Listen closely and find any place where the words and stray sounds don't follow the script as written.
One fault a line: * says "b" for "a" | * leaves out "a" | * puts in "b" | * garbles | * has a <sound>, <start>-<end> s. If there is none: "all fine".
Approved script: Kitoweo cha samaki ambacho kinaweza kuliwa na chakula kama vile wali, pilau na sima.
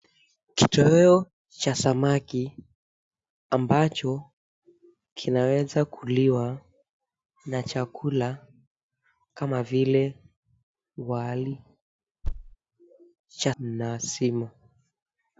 * has a thud, 12.2-12.6 s
* says "cha" for "pilau"